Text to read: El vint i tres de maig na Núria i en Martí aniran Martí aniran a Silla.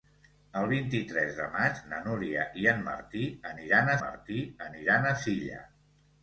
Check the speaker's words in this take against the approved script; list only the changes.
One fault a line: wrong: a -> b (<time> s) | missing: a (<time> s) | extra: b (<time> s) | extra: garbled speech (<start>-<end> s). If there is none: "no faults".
no faults